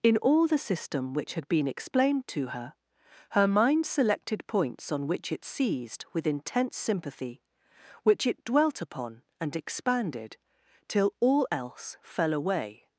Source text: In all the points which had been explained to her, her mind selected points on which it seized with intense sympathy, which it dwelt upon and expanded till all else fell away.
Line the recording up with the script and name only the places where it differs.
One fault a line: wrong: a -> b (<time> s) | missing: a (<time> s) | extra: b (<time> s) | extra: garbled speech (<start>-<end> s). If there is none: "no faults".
wrong: points -> system (0.6 s)